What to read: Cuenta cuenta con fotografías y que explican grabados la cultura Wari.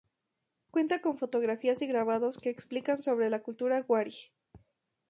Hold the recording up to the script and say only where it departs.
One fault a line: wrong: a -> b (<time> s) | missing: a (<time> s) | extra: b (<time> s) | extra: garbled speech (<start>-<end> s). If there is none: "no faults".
missing: cuenta (1.0 s)
extra: grabados (1.9 s)
wrong: grabados -> sobre (3.0 s)